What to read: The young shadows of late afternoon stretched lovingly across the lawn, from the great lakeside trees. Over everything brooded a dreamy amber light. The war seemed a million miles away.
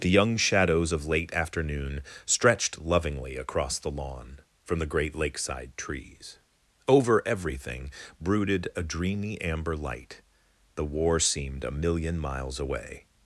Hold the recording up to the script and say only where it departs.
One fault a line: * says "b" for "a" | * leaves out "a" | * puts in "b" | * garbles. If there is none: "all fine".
all fine